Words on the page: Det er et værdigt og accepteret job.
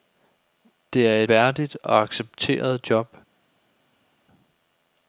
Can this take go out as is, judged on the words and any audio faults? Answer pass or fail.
fail